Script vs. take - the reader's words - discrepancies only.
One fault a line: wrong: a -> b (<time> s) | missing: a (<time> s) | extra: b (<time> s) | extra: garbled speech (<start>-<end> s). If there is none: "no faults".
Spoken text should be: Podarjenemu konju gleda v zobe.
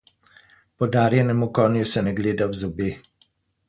extra: se ne (1.9 s)